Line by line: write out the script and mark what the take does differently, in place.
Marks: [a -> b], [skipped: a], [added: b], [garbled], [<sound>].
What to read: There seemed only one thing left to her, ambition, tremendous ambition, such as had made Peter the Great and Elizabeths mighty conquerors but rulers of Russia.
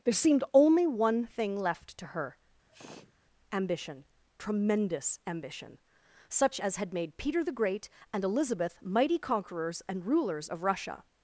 There seemed only one thing left to her, [sneeze] ambition, tremendous ambition, such as had made Peter the Great and [Elizabeths -> Elizabeth] mighty conquerors [but -> and] rulers of Russia.